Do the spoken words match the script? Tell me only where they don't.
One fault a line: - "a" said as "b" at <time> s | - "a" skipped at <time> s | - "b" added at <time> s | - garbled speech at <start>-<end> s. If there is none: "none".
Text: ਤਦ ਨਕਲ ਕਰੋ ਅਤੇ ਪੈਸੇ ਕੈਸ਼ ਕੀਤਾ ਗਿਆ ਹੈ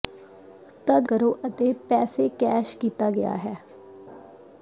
- "ਨਕਲ" skipped at 1.1 s